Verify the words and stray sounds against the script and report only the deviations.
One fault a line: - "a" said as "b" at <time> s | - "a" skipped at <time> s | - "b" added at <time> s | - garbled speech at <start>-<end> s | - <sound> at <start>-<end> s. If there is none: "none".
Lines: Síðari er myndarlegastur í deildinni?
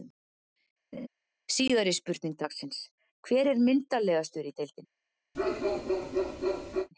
- laugh at 0.9-1.1 s
- "spurning dagsins Hver" added at 2.0 s
- bark at 5.3-6.9 s